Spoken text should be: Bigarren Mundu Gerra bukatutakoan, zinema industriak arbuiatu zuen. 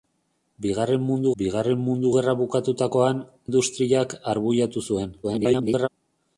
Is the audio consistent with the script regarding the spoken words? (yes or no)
no